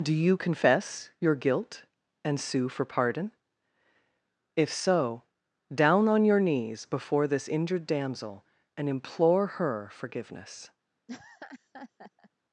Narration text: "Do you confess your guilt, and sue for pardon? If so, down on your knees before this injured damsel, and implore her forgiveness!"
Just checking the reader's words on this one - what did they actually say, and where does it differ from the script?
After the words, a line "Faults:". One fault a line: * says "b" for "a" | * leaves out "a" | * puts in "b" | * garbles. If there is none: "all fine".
"Do you confess your guilt, and sue for pardon? If so, down on your knees before this injured damsel, and implore her forgiveness!"
Faults:
all fine